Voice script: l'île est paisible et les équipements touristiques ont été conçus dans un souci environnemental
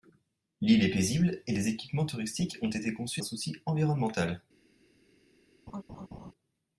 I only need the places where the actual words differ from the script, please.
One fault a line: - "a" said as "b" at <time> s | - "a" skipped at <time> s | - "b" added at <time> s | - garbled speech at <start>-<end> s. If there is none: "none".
- "dans" skipped at 3.2 s